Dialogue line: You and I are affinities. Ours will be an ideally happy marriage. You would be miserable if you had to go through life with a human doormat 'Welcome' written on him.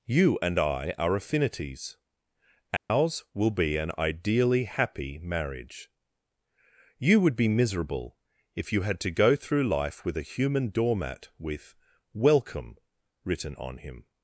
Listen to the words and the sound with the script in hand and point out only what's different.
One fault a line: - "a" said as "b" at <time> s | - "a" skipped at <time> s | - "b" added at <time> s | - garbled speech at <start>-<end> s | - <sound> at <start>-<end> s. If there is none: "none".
- dropout at 2.8-2.9 s
- "with" added at 11.4 s